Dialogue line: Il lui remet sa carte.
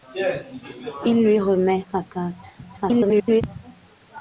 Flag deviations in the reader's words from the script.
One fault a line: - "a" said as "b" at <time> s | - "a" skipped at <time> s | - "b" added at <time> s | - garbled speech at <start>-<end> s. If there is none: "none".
- garbled speech at 2.6-3.4 s